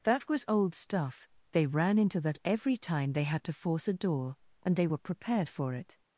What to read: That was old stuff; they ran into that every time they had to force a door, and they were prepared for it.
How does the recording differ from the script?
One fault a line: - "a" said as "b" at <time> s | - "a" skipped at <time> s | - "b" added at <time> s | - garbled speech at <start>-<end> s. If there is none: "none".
none